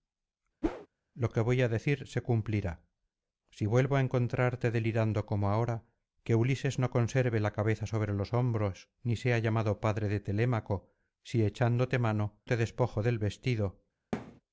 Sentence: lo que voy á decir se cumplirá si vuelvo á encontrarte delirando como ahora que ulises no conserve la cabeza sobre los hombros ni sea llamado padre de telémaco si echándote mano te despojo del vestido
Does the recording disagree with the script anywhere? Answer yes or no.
no